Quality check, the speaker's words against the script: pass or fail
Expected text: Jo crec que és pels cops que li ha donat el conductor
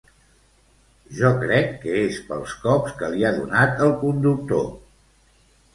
pass